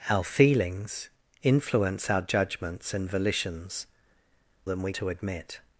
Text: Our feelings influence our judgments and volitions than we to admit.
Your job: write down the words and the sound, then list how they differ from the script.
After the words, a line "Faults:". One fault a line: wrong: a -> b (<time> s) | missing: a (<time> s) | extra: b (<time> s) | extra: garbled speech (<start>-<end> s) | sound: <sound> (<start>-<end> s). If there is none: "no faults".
Our feelings influence our judgments and volitions than we to admit.
Faults:
no faults